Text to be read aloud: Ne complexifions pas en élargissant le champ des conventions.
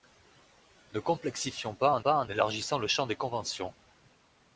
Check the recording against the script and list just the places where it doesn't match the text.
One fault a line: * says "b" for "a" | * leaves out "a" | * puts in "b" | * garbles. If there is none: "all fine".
* puts in "pas en"